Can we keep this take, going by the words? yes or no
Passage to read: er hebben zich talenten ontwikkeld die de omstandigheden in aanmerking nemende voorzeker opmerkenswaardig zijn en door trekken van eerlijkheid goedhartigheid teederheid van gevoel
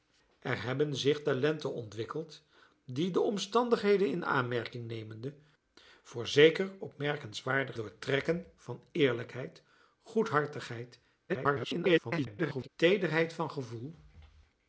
no